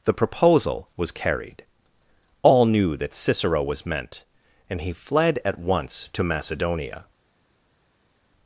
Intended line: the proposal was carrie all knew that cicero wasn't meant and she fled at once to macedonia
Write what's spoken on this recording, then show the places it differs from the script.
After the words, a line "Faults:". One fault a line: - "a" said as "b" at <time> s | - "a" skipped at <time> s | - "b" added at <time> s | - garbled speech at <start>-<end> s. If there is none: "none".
the proposal was carried all knew that cicero was meant and he fled at once to macedonia
Faults:
- "carrie" said as "carried" at 1.1 s
- "wasn't" said as "was" at 3.6 s
- "she" said as "he" at 4.8 s